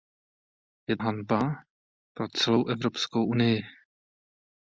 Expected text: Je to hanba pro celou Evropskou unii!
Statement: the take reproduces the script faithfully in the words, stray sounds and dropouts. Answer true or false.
false